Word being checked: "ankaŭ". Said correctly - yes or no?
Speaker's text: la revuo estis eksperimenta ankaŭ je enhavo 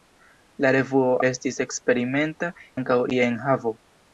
yes